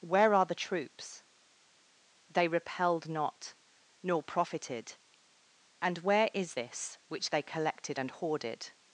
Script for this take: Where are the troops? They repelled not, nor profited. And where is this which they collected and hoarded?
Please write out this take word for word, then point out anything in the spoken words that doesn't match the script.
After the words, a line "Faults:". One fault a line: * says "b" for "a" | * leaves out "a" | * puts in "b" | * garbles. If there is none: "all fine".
Where are the troops? They repelled not, nor profited. And where is this which they collected and hoarded?
Faults:
all fine